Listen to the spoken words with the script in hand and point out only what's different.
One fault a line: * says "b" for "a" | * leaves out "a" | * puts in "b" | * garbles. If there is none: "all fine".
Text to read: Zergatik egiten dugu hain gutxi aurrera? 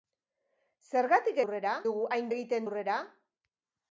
* says "aurrera" for "egiten"
* says "egiten" for "gutxi"